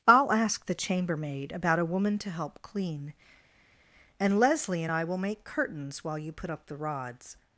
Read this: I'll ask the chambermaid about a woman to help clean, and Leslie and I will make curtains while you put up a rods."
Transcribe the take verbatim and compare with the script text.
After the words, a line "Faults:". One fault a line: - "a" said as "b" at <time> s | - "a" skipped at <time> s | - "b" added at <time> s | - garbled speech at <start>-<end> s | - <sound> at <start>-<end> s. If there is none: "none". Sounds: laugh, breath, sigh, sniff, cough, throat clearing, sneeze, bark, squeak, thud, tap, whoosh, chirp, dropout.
I'll ask the chambermaid about a woman to help clean, and Leslie and I will make curtains while you put up the rods."
Faults:
- "a" said as "the" at 6.6 s